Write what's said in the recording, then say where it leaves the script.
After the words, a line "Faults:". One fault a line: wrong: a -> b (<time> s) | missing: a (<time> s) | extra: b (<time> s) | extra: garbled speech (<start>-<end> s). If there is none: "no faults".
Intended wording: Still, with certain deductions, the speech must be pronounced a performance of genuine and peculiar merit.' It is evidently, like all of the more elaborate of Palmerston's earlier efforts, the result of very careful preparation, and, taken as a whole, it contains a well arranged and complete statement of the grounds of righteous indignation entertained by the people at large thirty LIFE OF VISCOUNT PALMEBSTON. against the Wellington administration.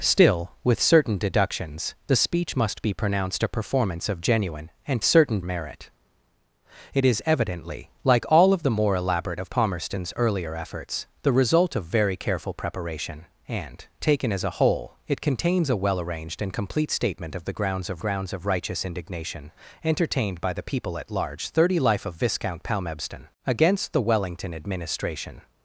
Still, with certain deductions, the speech must be pronounced a performance of genuine and certain merit.' It is evidently, like all of the more elaborate of Palmerston's earlier efforts, the result of very careful preparation, and, taken as a whole, it contains a well arranged and complete statement of the grounds of grounds of righteous indignation entertained by the people at large thirty LIFE OF VISCOUNT PALMEBSTON. against the Wellington administration.
Faults:
wrong: peculiar -> certain (5.0 s)
extra: grounds of (18.0 s)